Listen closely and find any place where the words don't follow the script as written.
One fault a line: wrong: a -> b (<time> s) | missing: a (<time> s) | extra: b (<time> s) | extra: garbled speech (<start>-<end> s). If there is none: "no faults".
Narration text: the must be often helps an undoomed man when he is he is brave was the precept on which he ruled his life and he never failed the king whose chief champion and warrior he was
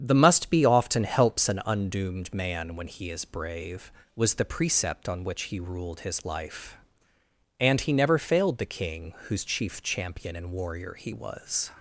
missing: he is (3.2 s)